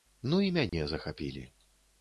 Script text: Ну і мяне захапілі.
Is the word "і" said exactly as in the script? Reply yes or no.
yes